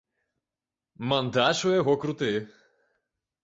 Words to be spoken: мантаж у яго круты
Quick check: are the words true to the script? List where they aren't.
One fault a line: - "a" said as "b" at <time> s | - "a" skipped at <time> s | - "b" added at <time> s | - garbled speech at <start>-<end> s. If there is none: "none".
none